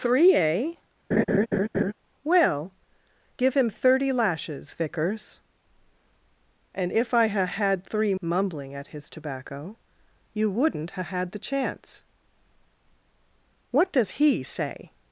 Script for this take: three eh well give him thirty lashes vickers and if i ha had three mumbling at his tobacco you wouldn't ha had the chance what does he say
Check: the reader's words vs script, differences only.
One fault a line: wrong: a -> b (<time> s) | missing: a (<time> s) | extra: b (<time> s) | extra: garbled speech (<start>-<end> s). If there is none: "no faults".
no faults